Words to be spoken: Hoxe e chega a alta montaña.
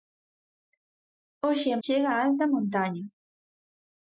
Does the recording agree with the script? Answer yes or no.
yes